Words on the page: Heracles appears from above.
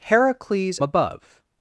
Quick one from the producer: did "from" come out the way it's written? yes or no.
no